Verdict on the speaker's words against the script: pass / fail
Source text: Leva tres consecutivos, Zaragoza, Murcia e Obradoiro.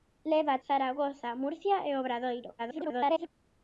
fail